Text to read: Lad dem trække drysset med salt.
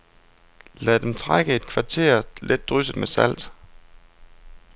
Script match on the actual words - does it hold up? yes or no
no